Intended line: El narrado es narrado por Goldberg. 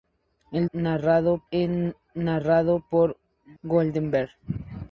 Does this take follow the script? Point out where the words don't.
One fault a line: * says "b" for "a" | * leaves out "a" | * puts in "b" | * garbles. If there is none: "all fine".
all fine